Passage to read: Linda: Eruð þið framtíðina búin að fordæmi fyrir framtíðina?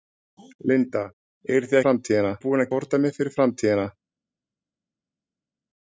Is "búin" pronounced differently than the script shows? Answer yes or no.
no